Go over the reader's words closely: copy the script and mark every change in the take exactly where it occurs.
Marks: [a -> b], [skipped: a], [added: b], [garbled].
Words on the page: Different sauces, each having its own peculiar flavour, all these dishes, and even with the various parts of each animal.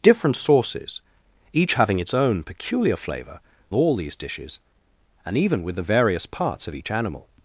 Different sauces, each having its own peculiar flavour, all these dishes, and even with the various parts of each animal.